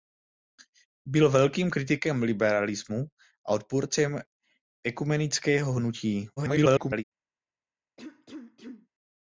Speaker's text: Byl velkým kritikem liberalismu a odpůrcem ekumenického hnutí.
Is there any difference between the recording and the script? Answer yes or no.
yes